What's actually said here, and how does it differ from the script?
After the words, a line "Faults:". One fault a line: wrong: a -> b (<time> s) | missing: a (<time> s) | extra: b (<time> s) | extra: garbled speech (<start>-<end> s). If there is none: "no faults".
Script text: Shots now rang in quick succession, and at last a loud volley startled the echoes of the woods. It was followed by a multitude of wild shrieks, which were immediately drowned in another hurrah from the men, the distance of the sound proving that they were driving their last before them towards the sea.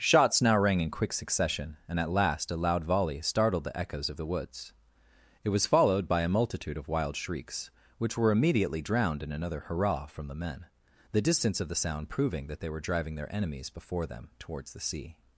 Shots now rang in quick succession, and at last a loud volley startled the echoes of the woods. It was followed by a multitude of wild shrieks, which were immediately drowned in another hurrah from the men, the distance of the sound proving that they were driving their enemies before them towards the sea.
Faults:
wrong: last -> enemies (13.3 s)